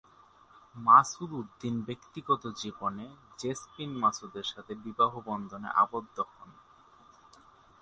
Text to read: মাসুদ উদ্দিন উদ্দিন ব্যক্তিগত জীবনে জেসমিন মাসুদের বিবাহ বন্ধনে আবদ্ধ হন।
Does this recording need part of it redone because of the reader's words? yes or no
yes